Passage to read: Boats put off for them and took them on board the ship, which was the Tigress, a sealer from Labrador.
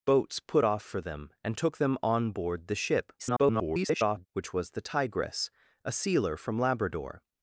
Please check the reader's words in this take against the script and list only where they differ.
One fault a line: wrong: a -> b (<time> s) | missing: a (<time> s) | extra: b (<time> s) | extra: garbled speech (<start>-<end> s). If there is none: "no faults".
extra: garbled speech (3.2-4.3 s)